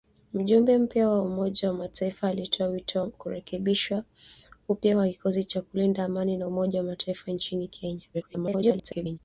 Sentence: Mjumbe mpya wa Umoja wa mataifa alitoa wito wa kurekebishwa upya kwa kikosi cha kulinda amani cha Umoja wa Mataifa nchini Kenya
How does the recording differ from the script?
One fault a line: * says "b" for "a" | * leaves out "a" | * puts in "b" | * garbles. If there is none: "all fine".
* garbles